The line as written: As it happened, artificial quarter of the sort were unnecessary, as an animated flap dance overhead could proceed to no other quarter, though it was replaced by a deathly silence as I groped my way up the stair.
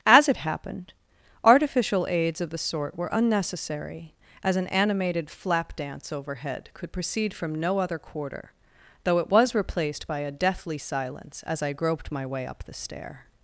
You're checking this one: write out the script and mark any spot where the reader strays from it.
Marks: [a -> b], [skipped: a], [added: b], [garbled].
As it happened, artificial [quarter -> aids] of the sort were unnecessary, as an animated flap dance overhead could proceed [to -> from] no other quarter, though it was replaced by a deathly silence as I groped my way up the stair.